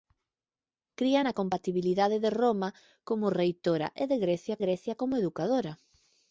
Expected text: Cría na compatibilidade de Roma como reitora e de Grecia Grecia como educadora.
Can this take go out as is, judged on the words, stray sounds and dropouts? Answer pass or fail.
pass